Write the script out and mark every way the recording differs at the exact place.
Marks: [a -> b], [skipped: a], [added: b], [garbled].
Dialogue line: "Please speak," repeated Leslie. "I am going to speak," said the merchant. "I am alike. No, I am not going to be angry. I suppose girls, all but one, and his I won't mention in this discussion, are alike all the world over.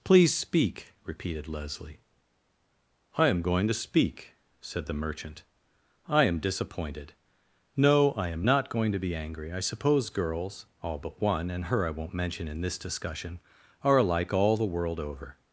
"Please speak," repeated Leslie. "I am going to speak," said the merchant. "I am [alike. -> disappointed] No, I am not going to be angry. I suppose girls, all but one, and [his -> her] I won't mention in this discussion, are alike all the world over.